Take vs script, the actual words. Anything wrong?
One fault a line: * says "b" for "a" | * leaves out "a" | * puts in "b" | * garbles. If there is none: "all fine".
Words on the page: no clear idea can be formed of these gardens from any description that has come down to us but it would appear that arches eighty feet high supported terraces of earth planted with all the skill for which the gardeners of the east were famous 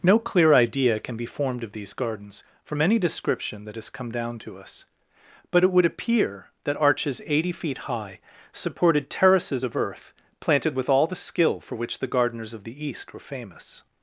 all fine